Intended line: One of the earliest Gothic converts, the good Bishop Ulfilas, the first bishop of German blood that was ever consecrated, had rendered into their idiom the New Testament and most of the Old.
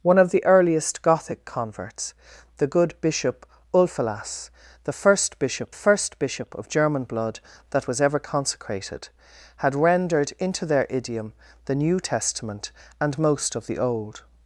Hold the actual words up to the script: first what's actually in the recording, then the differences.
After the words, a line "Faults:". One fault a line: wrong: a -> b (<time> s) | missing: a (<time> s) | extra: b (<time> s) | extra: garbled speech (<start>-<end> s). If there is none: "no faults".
One of the earliest Gothic converts, the good Bishop Ulfilas, the first bishop first bishop of German blood that was ever consecrated, had rendered into their idiom the New Testament and most of the Old.
Faults:
extra: first bishop (5.7 s)